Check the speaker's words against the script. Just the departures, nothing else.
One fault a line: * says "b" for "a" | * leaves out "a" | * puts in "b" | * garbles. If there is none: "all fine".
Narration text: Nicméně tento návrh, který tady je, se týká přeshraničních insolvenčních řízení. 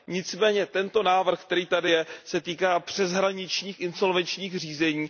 all fine